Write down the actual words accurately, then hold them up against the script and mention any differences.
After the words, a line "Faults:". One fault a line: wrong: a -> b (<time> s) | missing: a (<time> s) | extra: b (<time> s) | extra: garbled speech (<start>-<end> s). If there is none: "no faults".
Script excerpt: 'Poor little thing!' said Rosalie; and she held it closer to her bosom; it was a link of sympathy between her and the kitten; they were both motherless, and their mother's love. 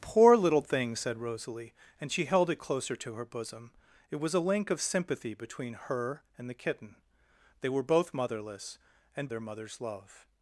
'Poor little thing!' said Rosalie; and she held it closer to her bosom; it was a link of sympathy between her and the kitten; they were both motherless, and their mother's love.
Faults:
no faults